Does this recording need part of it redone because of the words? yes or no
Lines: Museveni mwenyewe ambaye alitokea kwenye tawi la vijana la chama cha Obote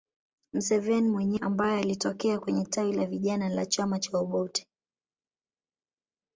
no